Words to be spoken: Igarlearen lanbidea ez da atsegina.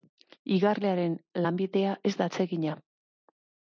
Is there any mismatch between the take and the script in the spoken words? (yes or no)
no